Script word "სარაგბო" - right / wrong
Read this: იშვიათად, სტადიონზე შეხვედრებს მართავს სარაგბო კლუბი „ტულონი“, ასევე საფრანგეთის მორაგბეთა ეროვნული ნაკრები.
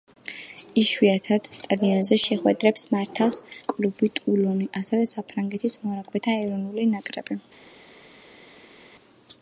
wrong